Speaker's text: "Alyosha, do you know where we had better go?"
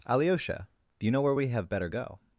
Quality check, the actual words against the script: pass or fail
fail